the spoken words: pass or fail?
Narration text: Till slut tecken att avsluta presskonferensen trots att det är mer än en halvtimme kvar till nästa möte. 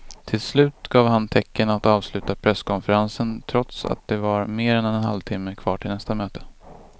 fail